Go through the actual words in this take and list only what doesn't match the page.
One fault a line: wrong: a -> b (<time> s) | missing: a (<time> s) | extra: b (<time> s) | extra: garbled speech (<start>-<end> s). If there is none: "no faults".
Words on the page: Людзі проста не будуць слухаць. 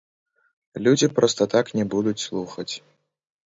extra: так (1.5 s)